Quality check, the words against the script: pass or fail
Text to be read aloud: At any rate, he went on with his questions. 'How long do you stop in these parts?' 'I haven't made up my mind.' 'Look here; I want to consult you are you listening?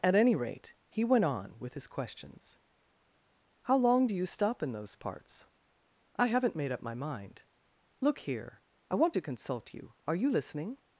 fail